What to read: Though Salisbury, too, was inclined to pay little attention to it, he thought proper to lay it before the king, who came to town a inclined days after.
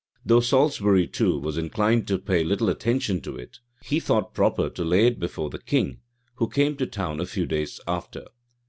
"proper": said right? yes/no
yes